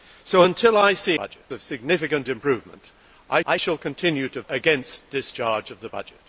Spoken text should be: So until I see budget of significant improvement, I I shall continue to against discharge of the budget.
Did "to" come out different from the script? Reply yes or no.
no